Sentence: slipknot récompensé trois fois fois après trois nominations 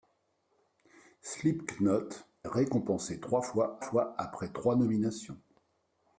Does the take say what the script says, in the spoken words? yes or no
yes